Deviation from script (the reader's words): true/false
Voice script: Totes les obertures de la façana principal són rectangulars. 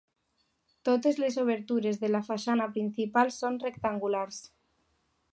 false